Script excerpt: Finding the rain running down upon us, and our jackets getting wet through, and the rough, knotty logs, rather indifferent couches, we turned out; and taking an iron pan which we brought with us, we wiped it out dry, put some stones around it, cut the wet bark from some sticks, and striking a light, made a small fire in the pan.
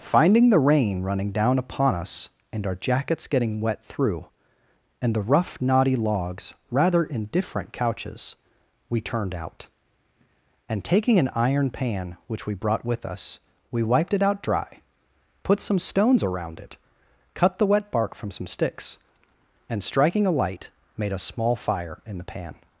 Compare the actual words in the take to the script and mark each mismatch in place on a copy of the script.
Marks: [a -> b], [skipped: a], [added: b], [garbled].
Finding the rain running down upon us, and our jackets getting wet through, and the rough, knotty logs, rather indifferent couches, we turned out; and taking an iron pan which we brought with us, we wiped it out dry, put some stones around it, cut the wet bark from some sticks, and striking a light, made a small fire in the pan.